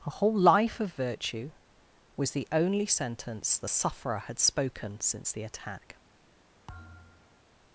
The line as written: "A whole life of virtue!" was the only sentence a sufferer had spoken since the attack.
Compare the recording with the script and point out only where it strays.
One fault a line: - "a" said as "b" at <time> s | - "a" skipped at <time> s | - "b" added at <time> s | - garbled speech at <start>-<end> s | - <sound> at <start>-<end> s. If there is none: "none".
- "a" said as "the" at 3.6 s
- thud at 6.7-7.4 s